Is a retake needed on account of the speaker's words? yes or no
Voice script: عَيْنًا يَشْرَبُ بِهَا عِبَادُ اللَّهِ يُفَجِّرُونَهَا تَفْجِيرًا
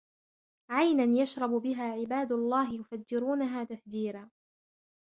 no